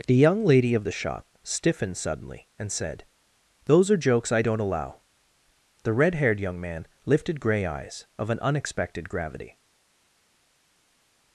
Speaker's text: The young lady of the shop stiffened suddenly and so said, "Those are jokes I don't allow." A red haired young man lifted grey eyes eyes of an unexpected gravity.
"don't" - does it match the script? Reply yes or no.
yes